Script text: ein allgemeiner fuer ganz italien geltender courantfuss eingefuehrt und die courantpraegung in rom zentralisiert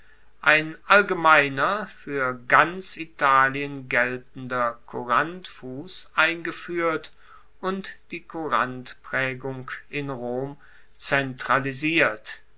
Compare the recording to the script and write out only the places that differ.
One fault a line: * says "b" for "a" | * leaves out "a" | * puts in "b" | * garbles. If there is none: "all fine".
all fine